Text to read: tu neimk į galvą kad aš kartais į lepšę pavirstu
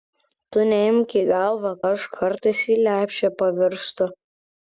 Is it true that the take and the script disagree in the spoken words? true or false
true